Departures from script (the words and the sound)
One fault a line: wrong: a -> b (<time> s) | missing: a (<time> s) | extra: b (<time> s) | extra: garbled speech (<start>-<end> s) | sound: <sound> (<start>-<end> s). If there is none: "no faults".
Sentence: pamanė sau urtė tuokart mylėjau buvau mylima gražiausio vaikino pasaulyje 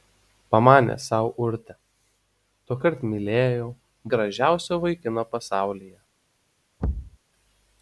missing: buvau mylima (3.7 s)
sound: thud (6.8-7.2 s)